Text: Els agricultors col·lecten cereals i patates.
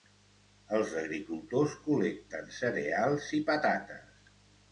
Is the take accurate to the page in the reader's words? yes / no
yes